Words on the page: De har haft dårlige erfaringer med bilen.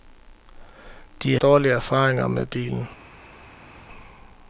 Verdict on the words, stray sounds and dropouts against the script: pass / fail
fail